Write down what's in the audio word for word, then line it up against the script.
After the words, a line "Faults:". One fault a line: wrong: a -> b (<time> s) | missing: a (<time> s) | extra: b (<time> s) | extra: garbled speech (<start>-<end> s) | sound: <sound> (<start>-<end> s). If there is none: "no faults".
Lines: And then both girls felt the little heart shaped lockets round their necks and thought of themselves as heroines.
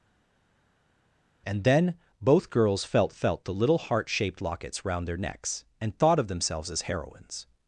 And then both girls felt felt the little heart shaped lockets round their necks and thought of themselves as heroines.
Faults:
extra: felt (3.1 s)